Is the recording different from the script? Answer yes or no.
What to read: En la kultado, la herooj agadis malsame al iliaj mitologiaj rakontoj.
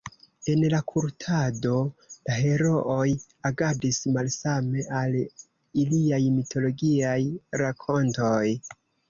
no